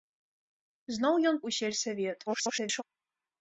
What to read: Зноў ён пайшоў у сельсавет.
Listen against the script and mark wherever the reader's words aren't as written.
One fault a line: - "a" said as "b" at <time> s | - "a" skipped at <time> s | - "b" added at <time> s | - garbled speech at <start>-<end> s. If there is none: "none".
- "пайшоў" skipped at 1.4 s
- garbled speech at 2.3-2.8 s